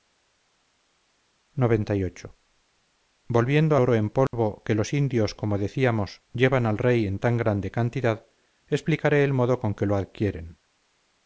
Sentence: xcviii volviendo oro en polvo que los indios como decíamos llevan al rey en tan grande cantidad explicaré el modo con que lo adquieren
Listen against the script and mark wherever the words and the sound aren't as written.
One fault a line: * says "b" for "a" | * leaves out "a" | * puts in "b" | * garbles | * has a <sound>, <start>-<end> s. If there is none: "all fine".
* has a dropout, 4.3-4.3 s